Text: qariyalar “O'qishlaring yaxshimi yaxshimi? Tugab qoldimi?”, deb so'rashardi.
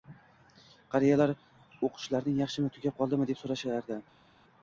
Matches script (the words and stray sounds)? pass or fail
fail